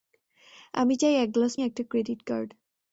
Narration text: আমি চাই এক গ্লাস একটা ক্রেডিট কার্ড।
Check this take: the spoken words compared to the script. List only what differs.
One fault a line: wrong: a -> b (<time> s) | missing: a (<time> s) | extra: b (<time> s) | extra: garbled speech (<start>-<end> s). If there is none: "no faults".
no faults